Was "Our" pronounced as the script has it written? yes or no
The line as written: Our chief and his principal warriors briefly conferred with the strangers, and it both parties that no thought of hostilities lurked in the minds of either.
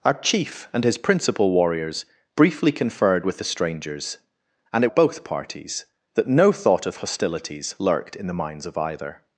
yes